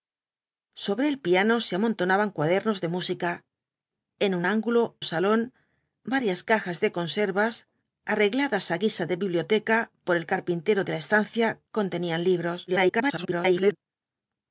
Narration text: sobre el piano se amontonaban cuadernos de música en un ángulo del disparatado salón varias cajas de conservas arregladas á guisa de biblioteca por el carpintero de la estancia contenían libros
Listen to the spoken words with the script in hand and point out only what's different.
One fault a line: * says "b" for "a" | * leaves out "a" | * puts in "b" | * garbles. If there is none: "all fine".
* leaves out "del disparatado"
* garbles